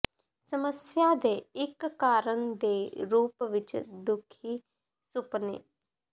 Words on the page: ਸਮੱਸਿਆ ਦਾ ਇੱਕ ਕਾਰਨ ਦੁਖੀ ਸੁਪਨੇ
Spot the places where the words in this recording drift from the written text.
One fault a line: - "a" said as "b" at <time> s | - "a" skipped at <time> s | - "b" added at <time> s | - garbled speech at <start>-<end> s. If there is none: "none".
- "ਦਾ" said as "ਦੇ" at 1.1 s
- "ਦੇ ਰੂਪ ਵਿੱਚ" added at 2.6 s